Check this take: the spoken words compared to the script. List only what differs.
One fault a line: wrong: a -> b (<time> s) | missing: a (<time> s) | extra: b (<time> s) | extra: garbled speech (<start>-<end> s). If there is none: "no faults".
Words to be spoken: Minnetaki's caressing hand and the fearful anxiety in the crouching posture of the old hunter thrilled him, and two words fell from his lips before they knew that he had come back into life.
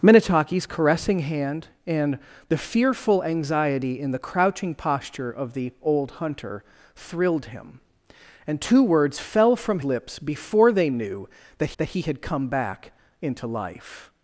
missing: his (9.8 s)
extra: that (11.8 s)